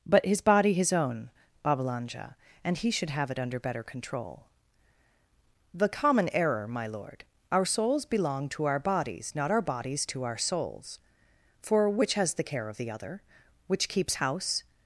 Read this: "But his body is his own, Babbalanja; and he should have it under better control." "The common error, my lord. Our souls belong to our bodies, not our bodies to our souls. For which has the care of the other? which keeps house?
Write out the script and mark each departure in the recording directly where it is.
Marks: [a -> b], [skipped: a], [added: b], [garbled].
"But his body [skipped: is] his own, Babbalanja; and he should have it under better control." "The common error, my lord. Our souls belong to our bodies, not our bodies to our souls. For which has the care of the other? which keeps house?